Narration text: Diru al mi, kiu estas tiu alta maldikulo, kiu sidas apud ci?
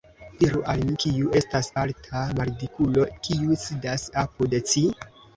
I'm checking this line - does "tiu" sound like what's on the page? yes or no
no